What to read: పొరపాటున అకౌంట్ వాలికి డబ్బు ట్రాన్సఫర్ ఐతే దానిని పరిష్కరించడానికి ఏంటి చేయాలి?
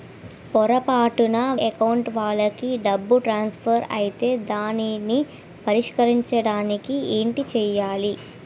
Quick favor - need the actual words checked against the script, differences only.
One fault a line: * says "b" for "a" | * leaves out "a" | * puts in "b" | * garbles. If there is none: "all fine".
all fine